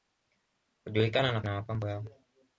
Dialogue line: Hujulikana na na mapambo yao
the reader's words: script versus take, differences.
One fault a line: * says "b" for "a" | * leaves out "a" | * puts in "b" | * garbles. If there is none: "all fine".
all fine